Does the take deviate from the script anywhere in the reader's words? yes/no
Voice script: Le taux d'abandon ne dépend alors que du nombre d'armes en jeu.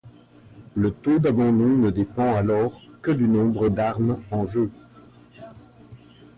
no